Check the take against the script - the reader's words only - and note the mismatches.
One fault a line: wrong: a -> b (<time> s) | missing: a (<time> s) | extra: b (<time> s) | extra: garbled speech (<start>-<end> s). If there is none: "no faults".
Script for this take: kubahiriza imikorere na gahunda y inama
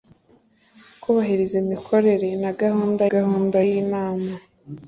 extra: gahunda (3.1 s)